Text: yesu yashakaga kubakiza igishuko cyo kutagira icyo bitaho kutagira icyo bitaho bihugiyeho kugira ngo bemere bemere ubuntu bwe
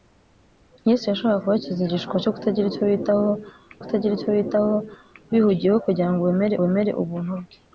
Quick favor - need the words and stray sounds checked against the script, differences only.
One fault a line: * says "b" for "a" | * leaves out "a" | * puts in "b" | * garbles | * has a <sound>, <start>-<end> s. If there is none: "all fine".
all fine